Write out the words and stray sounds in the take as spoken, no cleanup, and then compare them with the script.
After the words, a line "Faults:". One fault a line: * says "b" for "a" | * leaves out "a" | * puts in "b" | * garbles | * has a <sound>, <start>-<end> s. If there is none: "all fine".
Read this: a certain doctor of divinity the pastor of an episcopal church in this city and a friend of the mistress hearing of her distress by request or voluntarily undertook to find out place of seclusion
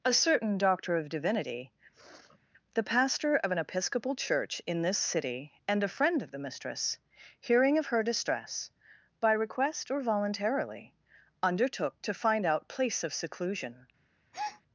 a certain doctor of divinity the pastor of an episcopal church in this city and a friend of the mistress hearing of her distress by request or voluntarily undertook to find out place of seclusion
Faults:
* has a sniff, 1.9-2.4 s
* has a breath, 14.3-14.6 s